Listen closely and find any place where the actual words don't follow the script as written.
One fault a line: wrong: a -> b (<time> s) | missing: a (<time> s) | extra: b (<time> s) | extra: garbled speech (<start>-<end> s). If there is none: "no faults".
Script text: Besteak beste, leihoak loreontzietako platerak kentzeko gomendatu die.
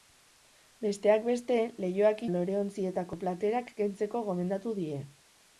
no faults